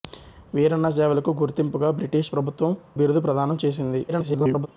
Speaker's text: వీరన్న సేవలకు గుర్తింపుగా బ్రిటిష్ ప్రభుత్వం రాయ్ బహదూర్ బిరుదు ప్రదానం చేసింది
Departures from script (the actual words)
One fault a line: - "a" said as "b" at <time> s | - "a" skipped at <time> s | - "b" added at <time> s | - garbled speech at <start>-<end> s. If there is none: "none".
- "రాయ్ బహదూర్" skipped at 2.7 s
- garbled speech at 4.1-4.7 s